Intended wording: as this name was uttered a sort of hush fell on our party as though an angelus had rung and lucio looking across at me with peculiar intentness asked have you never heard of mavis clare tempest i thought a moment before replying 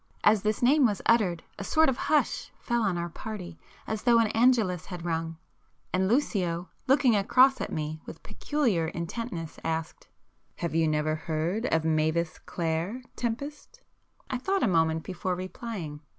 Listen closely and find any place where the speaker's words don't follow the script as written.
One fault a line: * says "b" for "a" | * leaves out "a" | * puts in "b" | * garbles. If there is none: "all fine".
all fine